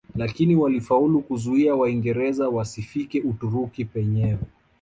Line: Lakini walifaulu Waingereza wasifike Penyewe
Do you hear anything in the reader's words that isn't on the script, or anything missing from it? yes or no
yes